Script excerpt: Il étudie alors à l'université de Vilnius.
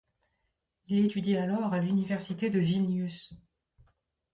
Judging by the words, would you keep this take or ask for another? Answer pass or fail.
pass